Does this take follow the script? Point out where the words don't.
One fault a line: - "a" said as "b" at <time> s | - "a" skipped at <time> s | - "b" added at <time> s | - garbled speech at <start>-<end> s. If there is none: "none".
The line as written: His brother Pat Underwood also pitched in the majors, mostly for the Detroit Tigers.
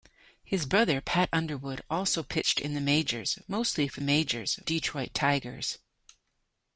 - "the" said as "majors" at 4.0 s